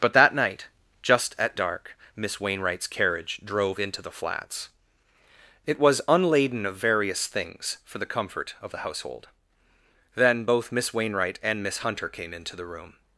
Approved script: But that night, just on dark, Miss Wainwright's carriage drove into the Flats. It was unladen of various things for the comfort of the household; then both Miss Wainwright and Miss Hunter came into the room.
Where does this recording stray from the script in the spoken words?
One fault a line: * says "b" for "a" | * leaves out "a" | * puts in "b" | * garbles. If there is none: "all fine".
* says "at" for "on"